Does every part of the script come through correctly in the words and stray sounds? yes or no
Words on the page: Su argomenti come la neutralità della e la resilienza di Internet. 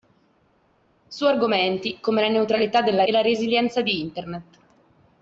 yes